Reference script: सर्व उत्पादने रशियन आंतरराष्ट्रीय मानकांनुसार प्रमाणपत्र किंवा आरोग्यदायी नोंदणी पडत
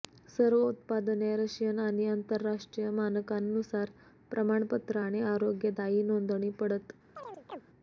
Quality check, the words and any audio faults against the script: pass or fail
fail